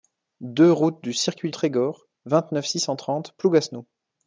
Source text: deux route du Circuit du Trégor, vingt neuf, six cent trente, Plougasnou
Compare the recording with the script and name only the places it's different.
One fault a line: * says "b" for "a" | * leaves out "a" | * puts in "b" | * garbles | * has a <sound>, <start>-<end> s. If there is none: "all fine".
* leaves out "du"